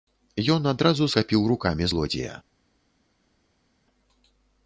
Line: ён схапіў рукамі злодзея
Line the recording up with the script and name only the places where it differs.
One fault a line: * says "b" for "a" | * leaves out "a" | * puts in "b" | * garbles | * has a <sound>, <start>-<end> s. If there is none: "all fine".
* puts in "адразу"